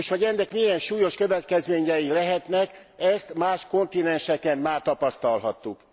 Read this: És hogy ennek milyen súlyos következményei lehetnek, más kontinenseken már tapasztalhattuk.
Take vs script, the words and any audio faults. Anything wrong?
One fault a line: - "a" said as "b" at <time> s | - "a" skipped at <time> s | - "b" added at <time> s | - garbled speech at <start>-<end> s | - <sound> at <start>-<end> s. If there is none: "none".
- "ezt" added at 3.0 s